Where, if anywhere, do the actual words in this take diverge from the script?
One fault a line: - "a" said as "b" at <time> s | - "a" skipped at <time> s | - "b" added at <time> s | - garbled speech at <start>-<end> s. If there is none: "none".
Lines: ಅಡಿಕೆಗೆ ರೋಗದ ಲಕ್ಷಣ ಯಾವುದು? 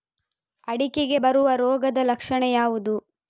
- "ಬರುವ" added at 1.2 s